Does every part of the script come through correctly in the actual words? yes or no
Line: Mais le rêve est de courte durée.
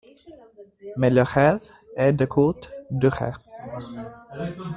yes